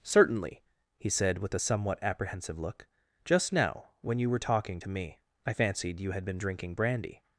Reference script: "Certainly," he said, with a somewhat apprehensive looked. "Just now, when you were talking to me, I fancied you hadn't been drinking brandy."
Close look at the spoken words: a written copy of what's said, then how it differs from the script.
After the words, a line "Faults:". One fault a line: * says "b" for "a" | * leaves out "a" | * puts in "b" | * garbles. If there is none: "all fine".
"Certainly," he said, with a somewhat apprehensive look. "Just now, when you were talking to me, I fancied you had been drinking brandy."
Faults:
* says "look" for "looked"
* says "had" for "hadn't"